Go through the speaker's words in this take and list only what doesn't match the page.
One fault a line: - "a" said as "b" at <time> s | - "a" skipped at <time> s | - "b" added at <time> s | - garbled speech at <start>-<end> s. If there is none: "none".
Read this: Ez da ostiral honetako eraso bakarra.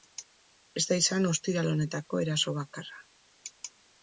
- "izan" added at 1.0 s